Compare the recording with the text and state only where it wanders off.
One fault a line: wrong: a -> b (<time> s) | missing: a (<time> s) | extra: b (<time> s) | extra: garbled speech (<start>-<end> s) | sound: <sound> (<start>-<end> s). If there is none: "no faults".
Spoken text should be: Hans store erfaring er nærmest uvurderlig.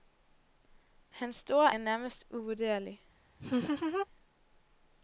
missing: erfaring (1.7 s)
sound: laugh (3.4-4.1 s)